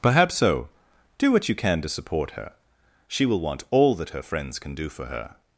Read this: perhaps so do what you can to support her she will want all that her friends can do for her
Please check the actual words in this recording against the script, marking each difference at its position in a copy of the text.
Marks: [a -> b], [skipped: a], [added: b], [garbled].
perhaps so do what you can to support her she will want all that her friends can do for her